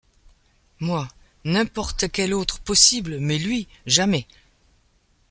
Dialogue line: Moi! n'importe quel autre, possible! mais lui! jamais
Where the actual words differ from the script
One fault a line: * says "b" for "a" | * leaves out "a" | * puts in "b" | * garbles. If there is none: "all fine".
all fine